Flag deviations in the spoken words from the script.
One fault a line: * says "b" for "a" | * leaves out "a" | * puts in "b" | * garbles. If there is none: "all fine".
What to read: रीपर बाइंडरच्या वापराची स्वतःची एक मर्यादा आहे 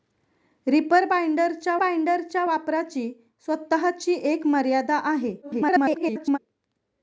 * puts in "बाइंडरच्या"
* garbles